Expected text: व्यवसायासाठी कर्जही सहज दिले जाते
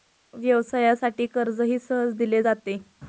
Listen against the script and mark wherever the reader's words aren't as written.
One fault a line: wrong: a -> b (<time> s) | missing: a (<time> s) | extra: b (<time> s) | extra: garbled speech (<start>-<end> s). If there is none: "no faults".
no faults